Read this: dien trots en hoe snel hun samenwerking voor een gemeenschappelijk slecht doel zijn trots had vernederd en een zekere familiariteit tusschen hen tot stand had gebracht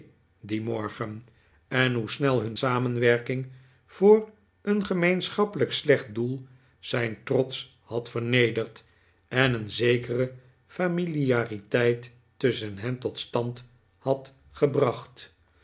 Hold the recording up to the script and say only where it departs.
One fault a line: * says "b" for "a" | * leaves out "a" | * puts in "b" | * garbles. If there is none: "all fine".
* says "morgen" for "trots"